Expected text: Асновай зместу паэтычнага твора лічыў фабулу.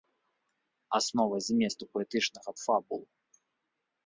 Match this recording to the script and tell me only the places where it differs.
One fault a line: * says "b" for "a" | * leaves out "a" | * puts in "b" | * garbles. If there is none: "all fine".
* leaves out "твора лічыў"